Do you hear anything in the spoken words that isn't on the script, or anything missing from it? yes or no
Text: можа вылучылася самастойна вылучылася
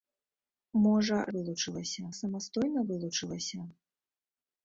no